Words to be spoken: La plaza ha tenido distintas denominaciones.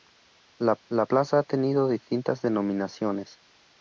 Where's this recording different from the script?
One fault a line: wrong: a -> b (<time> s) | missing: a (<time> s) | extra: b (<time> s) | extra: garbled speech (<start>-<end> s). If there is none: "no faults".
extra: la (0.9 s)